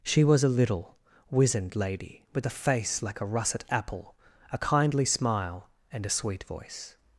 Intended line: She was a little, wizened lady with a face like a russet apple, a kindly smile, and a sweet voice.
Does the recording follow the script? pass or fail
pass